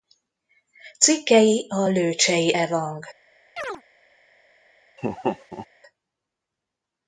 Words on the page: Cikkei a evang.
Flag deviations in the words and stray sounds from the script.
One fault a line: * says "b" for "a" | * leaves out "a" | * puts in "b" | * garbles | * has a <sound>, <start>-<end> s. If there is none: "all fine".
* puts in "lőcsei"
* has a chirp, 3.6-3.8 s
* has a laugh, 5.0-5.7 s